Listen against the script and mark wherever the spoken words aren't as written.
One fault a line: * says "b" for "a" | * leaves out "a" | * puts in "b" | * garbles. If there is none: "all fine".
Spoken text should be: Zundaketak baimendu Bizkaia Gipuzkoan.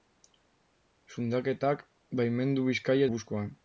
all fine